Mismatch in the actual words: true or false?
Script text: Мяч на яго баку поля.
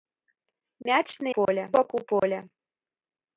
true